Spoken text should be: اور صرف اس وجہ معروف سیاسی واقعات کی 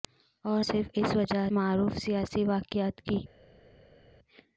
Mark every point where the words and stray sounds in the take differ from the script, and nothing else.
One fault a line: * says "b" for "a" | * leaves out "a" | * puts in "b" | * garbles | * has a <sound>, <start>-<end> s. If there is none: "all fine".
all fine